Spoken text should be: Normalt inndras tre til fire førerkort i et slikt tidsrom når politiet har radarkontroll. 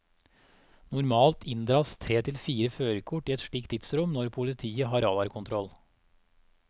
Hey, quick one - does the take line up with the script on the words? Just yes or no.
yes